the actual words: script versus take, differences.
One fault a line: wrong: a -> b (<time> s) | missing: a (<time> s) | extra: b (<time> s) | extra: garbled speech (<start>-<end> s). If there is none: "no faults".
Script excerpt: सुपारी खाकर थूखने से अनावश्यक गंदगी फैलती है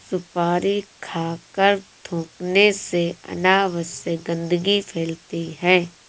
no faults